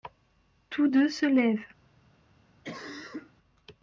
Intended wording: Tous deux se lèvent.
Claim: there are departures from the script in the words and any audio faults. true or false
true